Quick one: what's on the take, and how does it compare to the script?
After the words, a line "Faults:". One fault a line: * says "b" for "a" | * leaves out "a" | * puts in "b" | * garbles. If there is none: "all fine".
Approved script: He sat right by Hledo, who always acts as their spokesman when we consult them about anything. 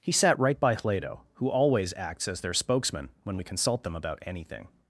He sat right by Hledo, who always acts as their spokesman when we consult them about anything.
Faults:
all fine